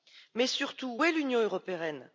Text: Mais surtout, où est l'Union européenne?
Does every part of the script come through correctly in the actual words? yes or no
yes